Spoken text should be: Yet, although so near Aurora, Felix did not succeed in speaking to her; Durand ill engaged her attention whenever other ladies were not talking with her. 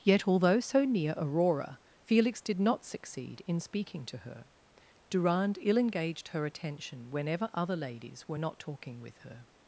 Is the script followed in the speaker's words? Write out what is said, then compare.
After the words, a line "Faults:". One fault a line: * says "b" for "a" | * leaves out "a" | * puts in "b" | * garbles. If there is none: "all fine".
Yet, although so near Aurora, Felix did not succeed in speaking to her; Durand ill engaged her attention whenever other ladies were not talking with her.
Faults:
all fine